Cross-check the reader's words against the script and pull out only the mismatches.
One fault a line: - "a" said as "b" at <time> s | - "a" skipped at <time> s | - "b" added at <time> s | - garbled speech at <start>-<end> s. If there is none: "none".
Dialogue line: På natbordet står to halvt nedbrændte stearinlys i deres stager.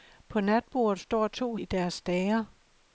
- "halvt nedbrændte stearinlys" skipped at 1.6 s